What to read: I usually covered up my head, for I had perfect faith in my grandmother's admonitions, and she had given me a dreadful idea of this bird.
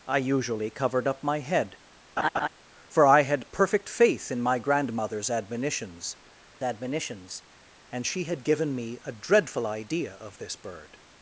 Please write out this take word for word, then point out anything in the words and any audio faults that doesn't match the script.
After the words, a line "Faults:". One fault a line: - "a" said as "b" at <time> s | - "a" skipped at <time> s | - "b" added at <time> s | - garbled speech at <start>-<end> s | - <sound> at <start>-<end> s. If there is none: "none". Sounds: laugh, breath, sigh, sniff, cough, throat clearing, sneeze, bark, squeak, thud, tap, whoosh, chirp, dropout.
I usually covered up my head, for I had perfect faith in my grandmother's admonitions admonitions, and she had given me a dreadful idea of this bird.
Faults:
- laugh at 2.2-2.5 s
- "admonitions" added at 6.6 s